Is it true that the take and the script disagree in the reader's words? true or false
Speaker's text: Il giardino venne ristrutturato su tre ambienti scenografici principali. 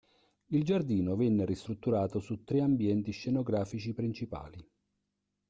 false